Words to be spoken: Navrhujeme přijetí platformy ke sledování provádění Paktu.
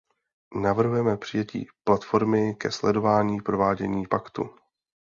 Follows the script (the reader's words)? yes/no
yes